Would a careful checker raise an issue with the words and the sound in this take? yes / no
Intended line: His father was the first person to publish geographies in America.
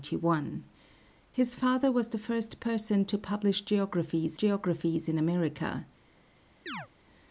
yes